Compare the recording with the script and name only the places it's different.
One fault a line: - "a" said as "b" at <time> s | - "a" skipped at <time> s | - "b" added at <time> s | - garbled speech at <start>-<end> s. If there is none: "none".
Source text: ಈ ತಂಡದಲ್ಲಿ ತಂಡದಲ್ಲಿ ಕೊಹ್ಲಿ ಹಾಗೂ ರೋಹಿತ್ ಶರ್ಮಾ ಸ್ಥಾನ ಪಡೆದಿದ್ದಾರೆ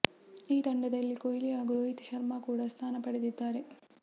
- "ತಂಡದಲ್ಲಿ" skipped at 1.2 s
- "ಕೂಡ" added at 2.4 s